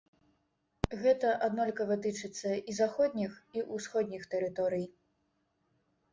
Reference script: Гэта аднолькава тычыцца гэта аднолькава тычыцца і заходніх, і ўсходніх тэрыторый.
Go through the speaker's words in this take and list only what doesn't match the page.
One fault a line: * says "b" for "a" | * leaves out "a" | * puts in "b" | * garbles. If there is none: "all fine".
* leaves out "гэта аднолькава тычыцца"